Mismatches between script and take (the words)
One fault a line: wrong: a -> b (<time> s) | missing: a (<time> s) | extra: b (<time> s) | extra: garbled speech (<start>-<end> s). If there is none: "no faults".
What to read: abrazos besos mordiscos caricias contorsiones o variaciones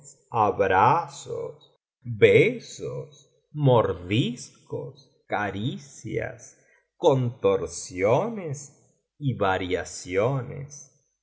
wrong: o -> y (9.2 s)